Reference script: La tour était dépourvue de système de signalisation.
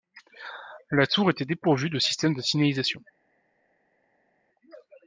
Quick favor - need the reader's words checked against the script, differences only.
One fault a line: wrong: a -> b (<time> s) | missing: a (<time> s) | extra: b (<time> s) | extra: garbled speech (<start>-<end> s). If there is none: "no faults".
no faults